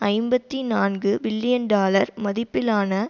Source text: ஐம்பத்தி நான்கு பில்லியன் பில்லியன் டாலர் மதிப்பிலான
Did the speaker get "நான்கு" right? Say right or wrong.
right